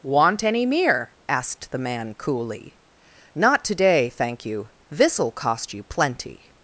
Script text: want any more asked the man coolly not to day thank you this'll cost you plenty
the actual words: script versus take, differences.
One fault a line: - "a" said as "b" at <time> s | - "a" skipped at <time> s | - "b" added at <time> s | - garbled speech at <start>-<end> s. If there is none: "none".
- "more" said as "mere" at 0.7 s